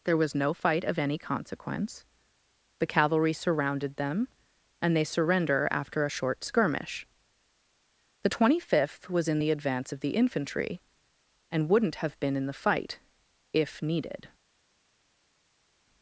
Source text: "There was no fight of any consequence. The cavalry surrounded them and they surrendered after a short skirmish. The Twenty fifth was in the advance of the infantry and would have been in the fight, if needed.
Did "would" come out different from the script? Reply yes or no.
yes